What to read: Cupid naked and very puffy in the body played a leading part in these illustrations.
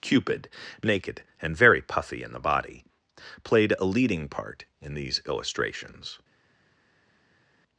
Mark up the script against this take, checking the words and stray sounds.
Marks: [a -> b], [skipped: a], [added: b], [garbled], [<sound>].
Cupid naked and very puffy in the body played a leading part in these illustrations.